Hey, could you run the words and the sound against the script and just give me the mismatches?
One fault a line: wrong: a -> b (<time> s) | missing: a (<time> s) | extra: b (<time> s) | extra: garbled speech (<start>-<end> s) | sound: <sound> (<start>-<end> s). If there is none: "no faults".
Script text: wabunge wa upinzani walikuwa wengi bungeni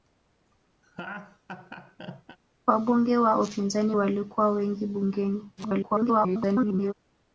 sound: laugh (0.8-2.4 s)
extra: garbled speech (5.6-6.9 s)